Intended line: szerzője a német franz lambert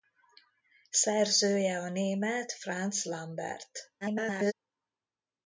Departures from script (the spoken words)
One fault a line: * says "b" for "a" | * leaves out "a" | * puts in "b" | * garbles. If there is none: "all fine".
* garbles